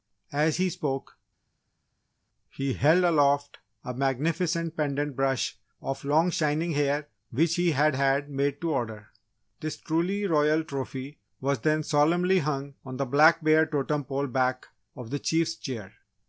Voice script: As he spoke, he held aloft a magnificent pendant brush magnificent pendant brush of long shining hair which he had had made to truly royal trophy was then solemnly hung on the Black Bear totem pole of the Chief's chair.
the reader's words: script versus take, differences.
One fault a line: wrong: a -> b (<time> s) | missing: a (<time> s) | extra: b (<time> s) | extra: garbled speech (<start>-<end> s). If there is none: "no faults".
missing: magnificent pendant brush (5.6 s)
extra: order This (8.7 s)
extra: back (14.3 s)